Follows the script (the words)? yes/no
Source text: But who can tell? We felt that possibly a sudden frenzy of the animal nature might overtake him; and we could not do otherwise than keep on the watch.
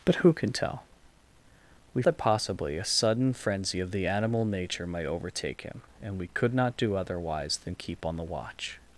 no